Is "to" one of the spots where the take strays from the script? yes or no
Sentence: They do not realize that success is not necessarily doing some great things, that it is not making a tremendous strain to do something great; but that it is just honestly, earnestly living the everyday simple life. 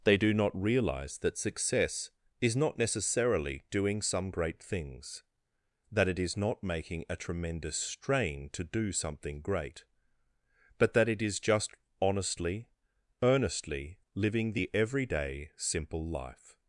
no